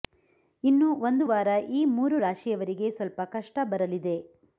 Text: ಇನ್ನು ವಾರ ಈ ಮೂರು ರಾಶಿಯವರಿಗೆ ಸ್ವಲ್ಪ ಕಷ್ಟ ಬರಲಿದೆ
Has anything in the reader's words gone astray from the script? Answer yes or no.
yes